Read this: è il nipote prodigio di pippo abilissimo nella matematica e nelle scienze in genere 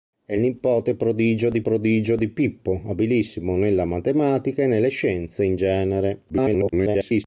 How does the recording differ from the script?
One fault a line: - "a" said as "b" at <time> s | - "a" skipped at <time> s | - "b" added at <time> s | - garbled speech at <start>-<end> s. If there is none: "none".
- "prodigio di" added at 1.6 s
- garbled speech at 6.3-7.2 s